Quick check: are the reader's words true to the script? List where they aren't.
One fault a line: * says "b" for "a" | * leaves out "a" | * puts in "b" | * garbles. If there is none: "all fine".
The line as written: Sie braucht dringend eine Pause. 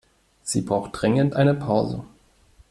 all fine